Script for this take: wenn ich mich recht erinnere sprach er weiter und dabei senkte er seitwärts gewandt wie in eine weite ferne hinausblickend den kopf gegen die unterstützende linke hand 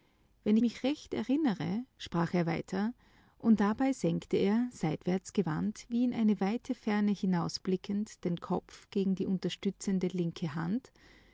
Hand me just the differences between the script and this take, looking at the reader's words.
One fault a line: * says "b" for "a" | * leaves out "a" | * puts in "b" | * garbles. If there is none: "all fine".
* leaves out "ich"